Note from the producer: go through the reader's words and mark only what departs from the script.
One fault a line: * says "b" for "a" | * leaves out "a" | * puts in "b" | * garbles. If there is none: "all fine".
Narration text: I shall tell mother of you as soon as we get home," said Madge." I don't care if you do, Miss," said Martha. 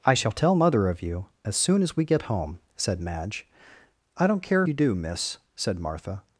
* leaves out "if"